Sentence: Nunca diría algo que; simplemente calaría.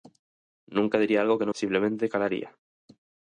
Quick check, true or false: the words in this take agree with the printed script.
true